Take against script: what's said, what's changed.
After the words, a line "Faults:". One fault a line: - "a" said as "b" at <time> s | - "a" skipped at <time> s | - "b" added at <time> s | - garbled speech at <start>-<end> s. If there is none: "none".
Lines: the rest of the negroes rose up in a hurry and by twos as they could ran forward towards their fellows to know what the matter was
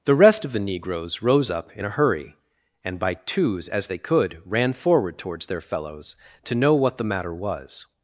the rest of the negroes rose up in a hurry and by twos as they could ran forward towards their fellows to know what the matter was
Faults:
none